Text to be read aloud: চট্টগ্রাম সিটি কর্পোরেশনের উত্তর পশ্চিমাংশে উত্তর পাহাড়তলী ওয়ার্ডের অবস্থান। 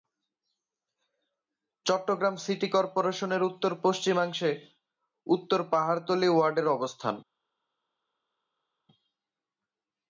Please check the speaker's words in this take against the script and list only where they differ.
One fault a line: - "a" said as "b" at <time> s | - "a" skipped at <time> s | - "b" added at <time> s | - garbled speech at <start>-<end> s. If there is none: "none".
none